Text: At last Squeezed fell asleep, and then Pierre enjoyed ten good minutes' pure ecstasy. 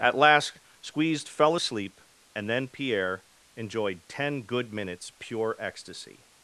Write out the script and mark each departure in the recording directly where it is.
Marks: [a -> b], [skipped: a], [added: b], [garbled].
At last Squeezed fell asleep, and then Pierre enjoyed ten good minutes' pure ecstasy.